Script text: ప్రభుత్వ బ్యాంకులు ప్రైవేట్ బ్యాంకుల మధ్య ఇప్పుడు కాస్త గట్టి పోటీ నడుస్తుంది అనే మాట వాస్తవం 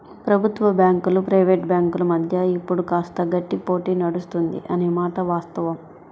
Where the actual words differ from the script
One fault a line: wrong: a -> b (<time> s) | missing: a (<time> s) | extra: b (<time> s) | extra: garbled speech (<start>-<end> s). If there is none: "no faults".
no faults